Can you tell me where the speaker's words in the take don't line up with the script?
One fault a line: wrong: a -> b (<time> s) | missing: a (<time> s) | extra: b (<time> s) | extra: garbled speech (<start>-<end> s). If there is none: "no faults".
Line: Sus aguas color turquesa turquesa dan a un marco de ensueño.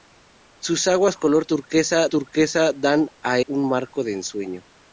no faults